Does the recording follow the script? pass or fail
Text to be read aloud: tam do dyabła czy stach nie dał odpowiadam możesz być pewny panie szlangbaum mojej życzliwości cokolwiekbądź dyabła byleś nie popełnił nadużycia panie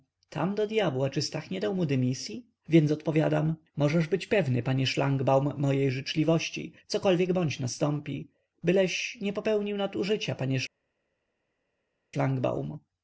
fail